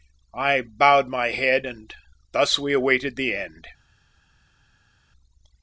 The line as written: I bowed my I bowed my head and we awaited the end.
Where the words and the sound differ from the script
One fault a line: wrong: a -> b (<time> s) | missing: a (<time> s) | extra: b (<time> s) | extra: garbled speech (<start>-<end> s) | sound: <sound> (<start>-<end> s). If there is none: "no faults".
missing: I bowed my (1.3 s)
extra: thus (2.3 s)